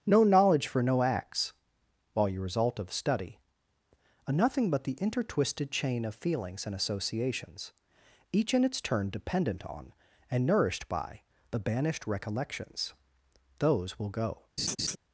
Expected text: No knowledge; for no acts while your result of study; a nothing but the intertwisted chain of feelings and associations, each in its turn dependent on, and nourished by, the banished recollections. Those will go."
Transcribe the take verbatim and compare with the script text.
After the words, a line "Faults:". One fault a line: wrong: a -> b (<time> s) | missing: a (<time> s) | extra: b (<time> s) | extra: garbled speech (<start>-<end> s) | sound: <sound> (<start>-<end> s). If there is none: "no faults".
No knowledge; for no acts while your result of study; a nothing but the intertwisted chain of feelings and associations, each in its turn dependent on, and nourished by, the banished recollections. Those will go."
Faults:
sound: laugh (14.6-15.0 s)